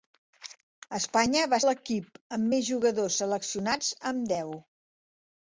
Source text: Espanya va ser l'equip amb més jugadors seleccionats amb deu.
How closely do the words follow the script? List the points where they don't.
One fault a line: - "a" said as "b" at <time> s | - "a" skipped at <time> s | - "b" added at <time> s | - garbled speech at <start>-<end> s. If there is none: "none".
- "ser" skipped at 1.6 s